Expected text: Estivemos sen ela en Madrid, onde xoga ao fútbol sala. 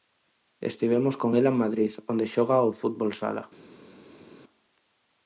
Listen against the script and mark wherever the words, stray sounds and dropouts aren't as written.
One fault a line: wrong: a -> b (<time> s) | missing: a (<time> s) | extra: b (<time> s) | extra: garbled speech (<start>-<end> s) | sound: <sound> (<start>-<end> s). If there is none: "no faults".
wrong: sen -> con (1.2 s)